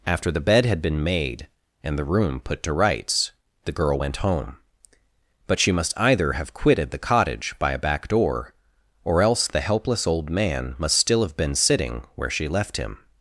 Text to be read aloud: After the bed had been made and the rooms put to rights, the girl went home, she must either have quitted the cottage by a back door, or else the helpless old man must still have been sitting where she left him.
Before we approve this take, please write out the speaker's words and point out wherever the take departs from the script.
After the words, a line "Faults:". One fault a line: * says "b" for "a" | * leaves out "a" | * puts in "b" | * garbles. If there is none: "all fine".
After the bed had been made and the room put to rights, the girl went home, but she must either have quitted the cottage by a back door, or else the helpless old man must still have been sitting where she left him.
Faults:
* says "room" for "rooms"
* puts in "but"